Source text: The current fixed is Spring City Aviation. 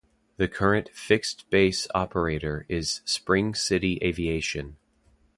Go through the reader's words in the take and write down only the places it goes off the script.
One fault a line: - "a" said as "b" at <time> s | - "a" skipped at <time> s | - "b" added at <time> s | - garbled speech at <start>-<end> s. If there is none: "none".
- "base operator" added at 1.5 s